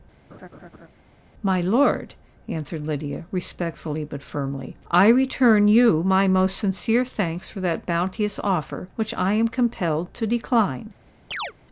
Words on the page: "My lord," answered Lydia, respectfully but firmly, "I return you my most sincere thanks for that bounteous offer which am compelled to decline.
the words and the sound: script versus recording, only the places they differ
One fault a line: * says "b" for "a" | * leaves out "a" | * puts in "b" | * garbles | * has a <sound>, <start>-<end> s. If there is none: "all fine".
* has a laugh, 0.3-0.9 s
* puts in "I"
* has a chirp, 11.3-11.5 s